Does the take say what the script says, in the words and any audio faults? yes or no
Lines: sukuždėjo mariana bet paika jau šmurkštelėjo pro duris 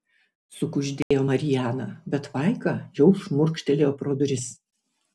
no